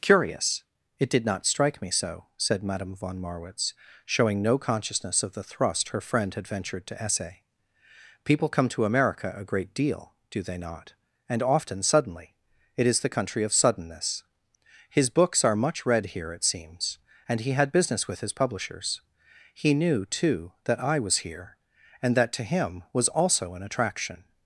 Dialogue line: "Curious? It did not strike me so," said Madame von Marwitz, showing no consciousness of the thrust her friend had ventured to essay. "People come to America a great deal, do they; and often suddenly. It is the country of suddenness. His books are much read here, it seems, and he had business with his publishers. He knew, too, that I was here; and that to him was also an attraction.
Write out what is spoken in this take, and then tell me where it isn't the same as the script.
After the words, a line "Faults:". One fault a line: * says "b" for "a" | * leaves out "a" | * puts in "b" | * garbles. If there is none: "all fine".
"Curious? It did not strike me so," said Madame von Marwitz, showing no consciousness of the thrust her friend had ventured to essay. "People come to America a great deal, do they not; and often suddenly. It is the country of suddenness. His books are much read here, it seems, and he had business with his publishers. He knew, too, that I was here; and that to him was also an attraction.
Faults:
* puts in "not"